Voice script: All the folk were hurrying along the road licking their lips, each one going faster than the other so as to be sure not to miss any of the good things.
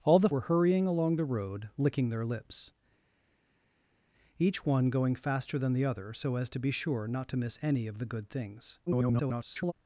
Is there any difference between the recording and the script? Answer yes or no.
yes